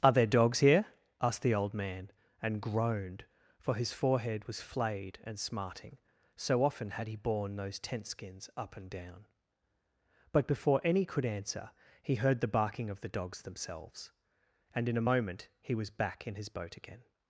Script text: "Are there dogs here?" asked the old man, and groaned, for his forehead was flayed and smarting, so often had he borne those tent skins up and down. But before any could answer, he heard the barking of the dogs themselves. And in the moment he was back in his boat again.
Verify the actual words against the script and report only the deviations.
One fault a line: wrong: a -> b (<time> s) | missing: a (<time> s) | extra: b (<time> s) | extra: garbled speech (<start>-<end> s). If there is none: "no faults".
wrong: the -> a (15.0 s)